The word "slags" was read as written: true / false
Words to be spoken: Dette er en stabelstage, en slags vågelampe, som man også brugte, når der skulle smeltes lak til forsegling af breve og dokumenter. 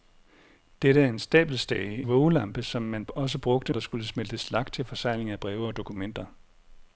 false